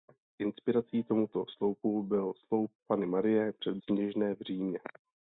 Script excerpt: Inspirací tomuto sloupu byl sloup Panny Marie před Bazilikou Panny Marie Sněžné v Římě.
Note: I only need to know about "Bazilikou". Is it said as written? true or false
false